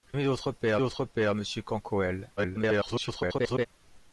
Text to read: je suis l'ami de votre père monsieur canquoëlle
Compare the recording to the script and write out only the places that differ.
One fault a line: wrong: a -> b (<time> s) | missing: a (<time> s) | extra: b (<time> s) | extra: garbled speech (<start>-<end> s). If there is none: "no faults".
missing: suis (0.2 s)
extra: votre père (0.8 s)
extra: garbled speech (2.4-3.7 s)